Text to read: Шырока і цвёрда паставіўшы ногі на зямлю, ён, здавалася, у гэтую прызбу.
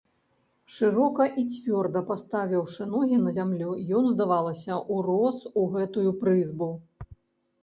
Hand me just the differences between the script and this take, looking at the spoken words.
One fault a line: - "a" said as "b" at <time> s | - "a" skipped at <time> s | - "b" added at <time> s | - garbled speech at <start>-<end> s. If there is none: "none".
- "урос" added at 5.0 s